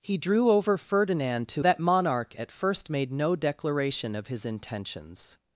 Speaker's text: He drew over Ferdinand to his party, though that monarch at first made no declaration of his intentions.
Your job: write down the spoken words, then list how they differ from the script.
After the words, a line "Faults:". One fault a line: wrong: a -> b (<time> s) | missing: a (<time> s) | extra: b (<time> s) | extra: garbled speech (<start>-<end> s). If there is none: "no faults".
He drew over Ferdinand to that monarch at first made no declaration of his intentions.
Faults:
missing: his party though (1.6 s)